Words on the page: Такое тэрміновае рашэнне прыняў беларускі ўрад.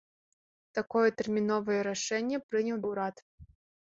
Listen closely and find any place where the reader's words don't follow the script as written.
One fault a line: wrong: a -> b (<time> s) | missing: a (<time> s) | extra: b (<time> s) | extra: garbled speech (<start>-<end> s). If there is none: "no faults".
missing: беларускі (2.8 s)